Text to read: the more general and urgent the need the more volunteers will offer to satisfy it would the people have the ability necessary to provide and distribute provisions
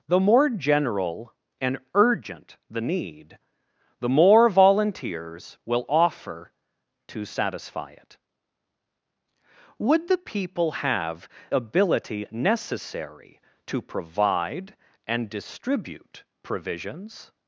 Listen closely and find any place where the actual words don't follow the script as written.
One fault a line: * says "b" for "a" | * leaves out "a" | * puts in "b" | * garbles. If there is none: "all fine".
* leaves out "the"